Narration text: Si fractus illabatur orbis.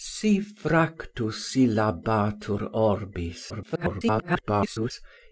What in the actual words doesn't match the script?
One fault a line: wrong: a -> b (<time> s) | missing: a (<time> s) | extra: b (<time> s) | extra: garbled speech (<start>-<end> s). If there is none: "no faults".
extra: garbled speech (3.5-4.9 s)